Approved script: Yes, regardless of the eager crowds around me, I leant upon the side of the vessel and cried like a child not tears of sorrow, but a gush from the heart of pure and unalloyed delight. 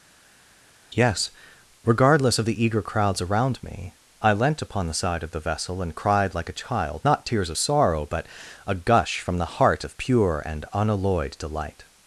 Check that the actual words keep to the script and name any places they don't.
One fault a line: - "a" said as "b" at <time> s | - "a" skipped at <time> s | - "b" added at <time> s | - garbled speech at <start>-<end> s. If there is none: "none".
none